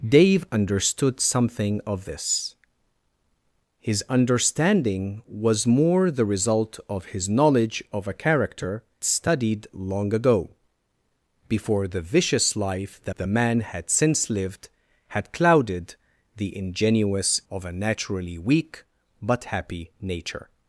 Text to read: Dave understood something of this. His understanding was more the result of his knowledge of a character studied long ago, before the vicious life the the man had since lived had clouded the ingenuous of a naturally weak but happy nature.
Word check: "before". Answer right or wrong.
right